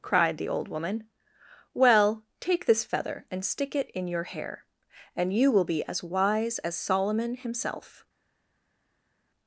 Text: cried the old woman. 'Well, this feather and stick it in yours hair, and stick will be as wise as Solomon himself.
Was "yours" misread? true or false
true